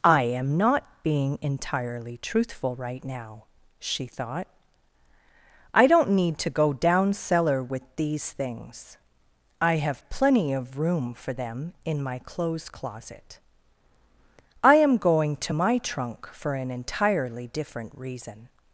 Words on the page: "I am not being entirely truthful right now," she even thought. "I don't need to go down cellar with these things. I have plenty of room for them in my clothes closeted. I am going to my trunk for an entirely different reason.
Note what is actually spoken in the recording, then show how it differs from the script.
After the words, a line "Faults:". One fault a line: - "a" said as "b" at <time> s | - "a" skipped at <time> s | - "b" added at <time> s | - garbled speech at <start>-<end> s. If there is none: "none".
"I am not being entirely truthful right now," she thought. "I don't need to go down cellar with these things. I have plenty of room for them in my clothes closet. I am going to my trunk for an entirely different reason.
Faults:
- "even" skipped at 4.1 s
- "closeted" said as "closet" at 12.7 s